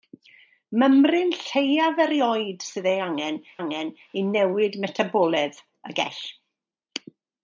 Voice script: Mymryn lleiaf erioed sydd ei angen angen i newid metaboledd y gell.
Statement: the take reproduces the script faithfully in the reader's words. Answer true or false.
true